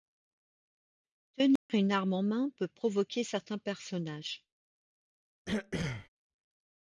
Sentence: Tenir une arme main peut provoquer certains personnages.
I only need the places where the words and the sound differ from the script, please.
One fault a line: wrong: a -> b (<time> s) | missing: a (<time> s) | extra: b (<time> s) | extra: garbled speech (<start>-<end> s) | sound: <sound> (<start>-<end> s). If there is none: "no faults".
sound: dropout (1.6-1.7 s)
extra: en (2.1 s)
sound: throat clearing (5.5-6.1 s)